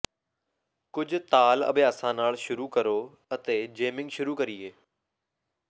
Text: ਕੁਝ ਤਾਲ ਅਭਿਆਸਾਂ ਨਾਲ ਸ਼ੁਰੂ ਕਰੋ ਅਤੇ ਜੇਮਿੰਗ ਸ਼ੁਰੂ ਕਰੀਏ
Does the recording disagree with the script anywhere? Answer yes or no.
no